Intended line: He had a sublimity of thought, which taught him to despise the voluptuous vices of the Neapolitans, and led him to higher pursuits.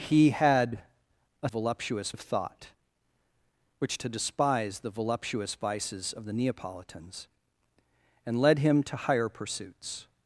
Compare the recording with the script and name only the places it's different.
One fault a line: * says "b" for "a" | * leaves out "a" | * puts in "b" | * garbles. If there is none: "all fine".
* says "voluptuous" for "sublimity"
* leaves out "taught him"